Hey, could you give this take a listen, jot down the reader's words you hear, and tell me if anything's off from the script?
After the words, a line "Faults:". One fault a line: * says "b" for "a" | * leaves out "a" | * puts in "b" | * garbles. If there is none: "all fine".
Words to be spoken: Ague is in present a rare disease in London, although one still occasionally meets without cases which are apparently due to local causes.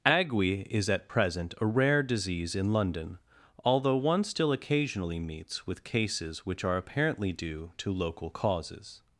Ague is at present a rare disease in London, although one still occasionally meets with cases which are apparently due to local causes.
Faults:
* says "at" for "in"
* says "with" for "without"